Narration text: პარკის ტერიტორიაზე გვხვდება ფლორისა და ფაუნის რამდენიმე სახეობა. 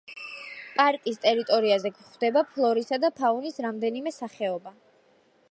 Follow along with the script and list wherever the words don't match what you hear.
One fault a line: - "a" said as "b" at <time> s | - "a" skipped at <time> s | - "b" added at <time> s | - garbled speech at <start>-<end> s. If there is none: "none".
none